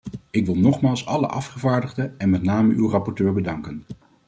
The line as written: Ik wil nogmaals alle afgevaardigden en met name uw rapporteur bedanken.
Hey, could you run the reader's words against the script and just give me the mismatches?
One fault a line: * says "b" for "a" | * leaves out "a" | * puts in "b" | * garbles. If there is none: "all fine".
all fine